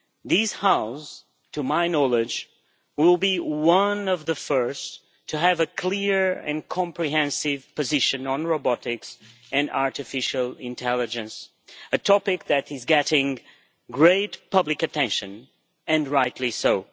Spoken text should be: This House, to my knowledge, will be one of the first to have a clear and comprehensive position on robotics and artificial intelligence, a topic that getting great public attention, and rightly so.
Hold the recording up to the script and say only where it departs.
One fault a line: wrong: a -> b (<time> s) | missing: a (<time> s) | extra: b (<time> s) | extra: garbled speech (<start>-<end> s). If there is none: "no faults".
extra: is (12.7 s)